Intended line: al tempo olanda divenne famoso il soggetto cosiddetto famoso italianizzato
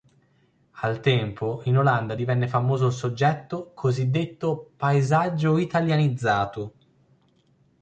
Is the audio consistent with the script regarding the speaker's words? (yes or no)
no